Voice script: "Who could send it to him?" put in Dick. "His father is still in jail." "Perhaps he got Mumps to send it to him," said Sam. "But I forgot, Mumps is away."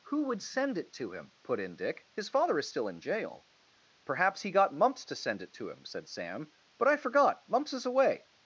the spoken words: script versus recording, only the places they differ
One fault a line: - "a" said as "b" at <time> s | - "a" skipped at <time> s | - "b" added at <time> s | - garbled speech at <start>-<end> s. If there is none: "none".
- "could" said as "would" at 0.2 s